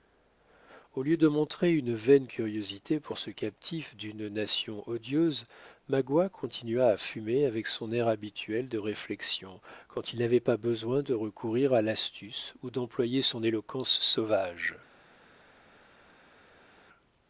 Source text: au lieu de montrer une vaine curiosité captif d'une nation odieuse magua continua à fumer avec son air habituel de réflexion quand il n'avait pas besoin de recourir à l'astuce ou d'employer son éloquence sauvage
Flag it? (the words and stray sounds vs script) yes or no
yes